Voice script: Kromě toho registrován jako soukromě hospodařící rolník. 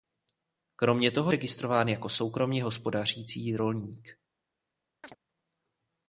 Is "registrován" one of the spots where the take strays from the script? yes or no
no